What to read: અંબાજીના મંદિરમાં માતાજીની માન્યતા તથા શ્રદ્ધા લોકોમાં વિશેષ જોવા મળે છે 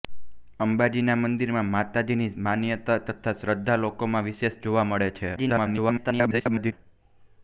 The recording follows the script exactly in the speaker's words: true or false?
false